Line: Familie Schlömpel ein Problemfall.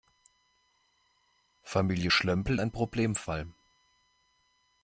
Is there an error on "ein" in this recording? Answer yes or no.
no